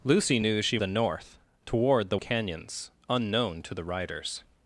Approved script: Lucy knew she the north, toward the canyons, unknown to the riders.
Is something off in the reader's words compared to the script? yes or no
no